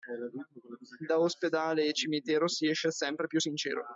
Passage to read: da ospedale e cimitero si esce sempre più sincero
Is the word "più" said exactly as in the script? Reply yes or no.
yes